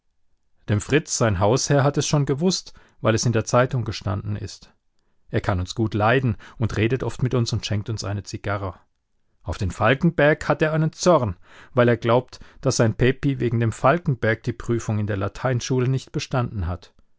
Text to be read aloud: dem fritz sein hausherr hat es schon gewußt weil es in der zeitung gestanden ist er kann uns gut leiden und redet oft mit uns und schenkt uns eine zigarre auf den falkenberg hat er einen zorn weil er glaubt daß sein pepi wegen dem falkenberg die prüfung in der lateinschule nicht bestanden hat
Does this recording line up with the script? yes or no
yes